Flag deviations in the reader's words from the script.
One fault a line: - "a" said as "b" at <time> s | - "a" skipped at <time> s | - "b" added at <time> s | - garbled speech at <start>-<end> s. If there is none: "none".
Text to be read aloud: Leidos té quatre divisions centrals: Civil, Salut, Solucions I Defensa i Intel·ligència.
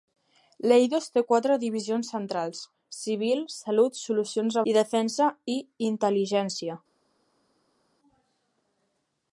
none